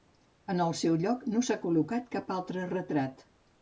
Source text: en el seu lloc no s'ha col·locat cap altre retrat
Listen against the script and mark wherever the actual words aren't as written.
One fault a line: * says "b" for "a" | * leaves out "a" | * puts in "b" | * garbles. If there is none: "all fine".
all fine